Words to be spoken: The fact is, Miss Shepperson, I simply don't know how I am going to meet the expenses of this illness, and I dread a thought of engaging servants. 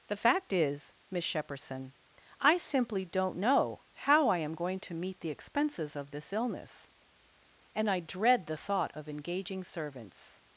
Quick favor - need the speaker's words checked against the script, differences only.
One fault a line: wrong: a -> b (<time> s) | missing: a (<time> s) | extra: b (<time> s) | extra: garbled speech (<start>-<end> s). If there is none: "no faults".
wrong: a -> the (8.5 s)